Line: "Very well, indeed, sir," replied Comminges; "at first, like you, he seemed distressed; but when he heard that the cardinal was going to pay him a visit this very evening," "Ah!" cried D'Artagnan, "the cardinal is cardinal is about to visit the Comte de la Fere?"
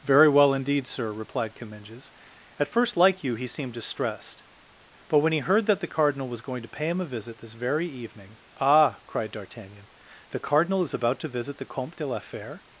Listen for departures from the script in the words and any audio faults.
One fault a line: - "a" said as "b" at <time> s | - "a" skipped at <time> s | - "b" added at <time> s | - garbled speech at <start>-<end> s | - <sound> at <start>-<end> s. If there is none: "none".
- "cardinal is" skipped at 10.9 s